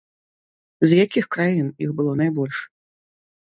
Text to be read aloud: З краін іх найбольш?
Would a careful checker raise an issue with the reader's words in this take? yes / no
yes